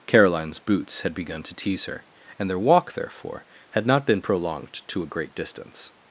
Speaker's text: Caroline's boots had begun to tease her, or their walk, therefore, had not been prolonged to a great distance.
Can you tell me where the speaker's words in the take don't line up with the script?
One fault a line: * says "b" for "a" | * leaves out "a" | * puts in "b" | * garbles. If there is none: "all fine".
* says "and" for "or"